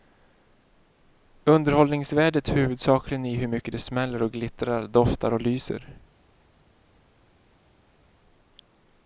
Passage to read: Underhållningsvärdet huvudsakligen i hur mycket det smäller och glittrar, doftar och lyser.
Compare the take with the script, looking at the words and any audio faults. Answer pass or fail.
pass